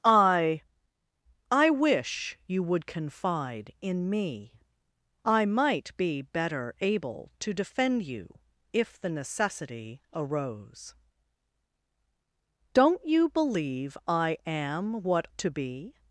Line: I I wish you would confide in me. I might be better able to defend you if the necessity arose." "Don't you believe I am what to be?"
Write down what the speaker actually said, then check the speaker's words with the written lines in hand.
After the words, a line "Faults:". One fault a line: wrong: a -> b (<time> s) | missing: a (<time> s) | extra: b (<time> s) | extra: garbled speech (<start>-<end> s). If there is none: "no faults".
I I wish you would confide in me. I might be better able to defend you if the necessity arose." "Don't you believe I am what to be?"
Faults:
no faults